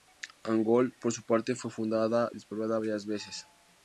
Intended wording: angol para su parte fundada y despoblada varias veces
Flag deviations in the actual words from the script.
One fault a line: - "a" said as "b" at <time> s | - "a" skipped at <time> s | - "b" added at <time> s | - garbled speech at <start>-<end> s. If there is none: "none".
- "para" said as "por" at 1.0 s
- "fue" added at 1.5 s